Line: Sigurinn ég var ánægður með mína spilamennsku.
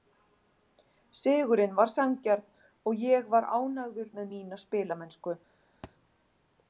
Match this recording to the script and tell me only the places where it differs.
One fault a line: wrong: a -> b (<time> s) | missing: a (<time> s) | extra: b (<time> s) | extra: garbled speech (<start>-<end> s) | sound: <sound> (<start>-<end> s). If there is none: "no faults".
extra: var sanngjarn og (1.8 s)
sound: thud (5.8-6.0 s)